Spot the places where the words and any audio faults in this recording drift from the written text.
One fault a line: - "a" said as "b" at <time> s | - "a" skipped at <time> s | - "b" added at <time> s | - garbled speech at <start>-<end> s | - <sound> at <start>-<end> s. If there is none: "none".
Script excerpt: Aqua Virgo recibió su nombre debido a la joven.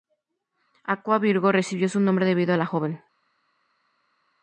none